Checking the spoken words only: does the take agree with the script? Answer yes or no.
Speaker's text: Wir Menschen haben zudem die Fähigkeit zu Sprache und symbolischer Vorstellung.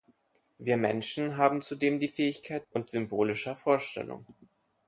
no